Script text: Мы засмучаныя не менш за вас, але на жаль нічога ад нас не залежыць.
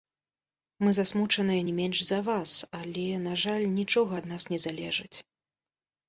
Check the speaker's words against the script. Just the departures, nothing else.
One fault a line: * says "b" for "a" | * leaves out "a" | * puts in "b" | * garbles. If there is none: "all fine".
all fine